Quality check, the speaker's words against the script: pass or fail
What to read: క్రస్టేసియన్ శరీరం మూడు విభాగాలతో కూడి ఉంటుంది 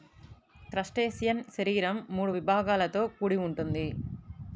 pass